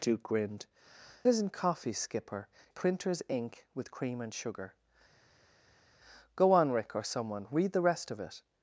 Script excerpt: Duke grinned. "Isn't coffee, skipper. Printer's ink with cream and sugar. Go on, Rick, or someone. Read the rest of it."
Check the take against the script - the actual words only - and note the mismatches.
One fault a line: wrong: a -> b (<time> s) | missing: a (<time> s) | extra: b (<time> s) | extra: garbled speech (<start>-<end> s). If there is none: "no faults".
no faults